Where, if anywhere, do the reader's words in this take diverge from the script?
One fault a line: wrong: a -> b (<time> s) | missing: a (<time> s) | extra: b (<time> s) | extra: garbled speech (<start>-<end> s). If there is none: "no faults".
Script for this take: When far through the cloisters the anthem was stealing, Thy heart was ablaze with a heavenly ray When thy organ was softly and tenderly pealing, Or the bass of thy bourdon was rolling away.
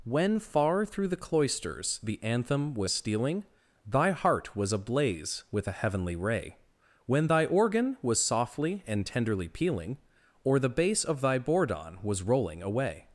no faults